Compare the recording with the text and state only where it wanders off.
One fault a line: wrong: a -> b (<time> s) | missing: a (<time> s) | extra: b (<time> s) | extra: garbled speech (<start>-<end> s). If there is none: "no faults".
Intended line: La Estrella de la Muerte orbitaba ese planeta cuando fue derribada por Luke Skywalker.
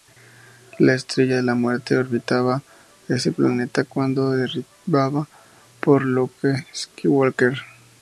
no faults